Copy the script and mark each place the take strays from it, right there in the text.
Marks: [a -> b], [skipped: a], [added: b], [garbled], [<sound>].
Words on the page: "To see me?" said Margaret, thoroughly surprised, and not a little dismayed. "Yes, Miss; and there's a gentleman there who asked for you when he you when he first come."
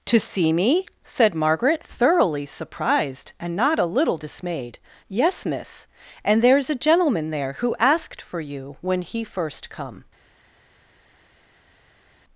"To see me?" said Margaret, thoroughly surprised, and not a little dismayed. "Yes, Miss; and there's a gentleman there who asked for you when he [skipped: you when he] first come."